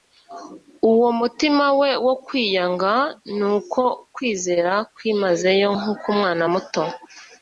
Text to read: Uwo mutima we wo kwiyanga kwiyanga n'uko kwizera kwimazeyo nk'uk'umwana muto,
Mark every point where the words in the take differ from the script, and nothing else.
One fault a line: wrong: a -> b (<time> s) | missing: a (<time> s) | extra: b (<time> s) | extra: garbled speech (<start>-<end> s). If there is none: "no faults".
missing: kwiyanga (2.9 s)